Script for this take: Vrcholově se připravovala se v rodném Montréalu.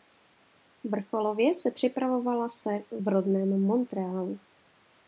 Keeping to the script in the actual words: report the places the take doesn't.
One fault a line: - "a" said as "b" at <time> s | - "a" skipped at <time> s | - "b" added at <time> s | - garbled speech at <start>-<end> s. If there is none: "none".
none